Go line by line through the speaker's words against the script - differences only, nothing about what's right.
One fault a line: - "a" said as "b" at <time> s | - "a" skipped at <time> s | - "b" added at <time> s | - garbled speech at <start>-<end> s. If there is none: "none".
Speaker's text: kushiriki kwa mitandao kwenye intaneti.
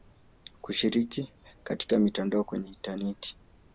- "kwa" said as "katika" at 1.6 s